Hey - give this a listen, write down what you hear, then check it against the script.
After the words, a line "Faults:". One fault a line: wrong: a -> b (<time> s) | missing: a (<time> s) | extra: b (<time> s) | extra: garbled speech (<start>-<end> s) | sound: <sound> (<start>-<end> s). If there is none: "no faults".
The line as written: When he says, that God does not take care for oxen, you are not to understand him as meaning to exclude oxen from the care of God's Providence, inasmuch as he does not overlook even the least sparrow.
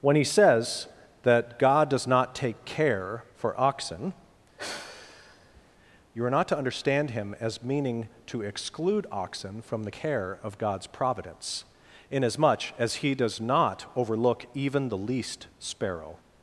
When he says, that God does not take care for oxen, you are not to understand him as meaning to exclude oxen from the care of God's Providence, inasmuch as he does not overlook even the least sparrow.
Faults:
sound: sigh (4.6-5.6 s)